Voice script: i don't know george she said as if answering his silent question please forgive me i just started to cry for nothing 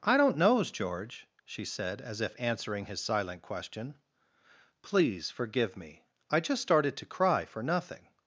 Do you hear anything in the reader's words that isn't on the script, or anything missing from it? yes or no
yes